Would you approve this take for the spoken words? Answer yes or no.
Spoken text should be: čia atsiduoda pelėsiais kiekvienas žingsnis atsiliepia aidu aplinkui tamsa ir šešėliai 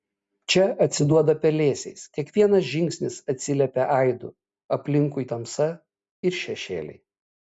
yes